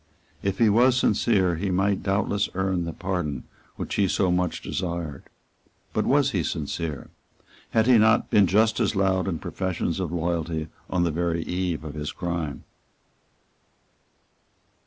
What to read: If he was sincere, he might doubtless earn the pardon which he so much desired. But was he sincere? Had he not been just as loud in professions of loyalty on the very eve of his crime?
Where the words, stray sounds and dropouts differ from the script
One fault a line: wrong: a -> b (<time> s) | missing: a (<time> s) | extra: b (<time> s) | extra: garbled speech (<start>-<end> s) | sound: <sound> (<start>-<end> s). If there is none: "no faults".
no faults